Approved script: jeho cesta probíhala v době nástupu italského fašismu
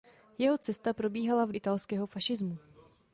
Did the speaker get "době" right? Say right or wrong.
wrong